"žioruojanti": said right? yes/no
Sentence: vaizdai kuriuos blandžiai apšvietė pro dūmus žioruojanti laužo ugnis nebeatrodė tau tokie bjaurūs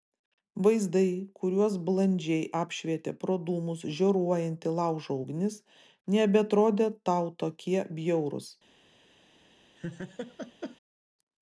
yes